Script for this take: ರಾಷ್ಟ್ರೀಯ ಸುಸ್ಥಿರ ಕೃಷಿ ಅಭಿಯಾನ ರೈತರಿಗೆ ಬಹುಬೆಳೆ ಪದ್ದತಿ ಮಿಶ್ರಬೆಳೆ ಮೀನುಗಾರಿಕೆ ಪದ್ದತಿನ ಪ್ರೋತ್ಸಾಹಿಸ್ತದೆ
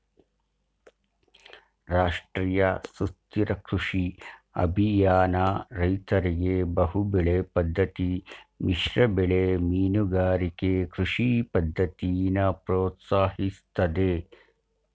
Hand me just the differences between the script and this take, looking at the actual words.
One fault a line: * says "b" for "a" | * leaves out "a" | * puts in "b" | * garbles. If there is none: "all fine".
* puts in "ಕೃಷಿ"